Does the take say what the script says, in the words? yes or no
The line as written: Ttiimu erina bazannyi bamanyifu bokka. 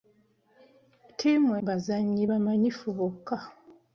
no